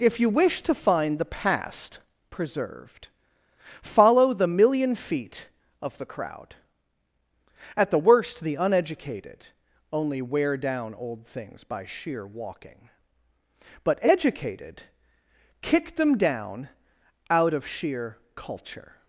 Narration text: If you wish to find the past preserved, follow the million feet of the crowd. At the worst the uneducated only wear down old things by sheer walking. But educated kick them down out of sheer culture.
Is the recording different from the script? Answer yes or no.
no